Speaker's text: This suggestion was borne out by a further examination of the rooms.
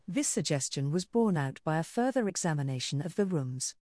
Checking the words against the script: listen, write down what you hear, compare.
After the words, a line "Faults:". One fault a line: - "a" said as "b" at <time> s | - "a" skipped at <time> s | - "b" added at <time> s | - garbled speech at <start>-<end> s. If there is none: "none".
This suggestion was borne out by a further examination of the rooms.
Faults:
none